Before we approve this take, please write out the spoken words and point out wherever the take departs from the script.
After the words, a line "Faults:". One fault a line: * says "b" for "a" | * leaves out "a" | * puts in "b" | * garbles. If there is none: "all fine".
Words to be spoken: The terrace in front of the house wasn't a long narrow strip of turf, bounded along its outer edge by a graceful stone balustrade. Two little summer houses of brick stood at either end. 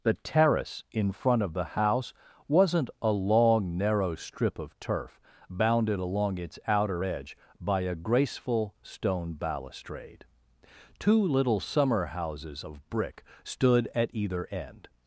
The terrace in front of the house wasn't a long narrow strip of turf, bounded along its outer edge by a graceful stone balustrade. Two little summer houses of brick stood at either end.
Faults:
all fine